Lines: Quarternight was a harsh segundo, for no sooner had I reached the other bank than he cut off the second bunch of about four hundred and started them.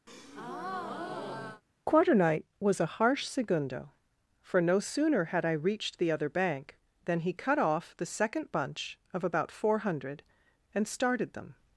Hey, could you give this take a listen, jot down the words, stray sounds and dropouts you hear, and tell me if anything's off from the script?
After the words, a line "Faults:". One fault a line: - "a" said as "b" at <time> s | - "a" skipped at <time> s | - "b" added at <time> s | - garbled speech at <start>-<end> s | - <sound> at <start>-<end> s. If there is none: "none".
Quarternight was a harsh segundo, for no sooner had I reached the other bank than he cut off the second bunch of about four hundred and started them.
Faults:
- breath at 0.1-1.6 s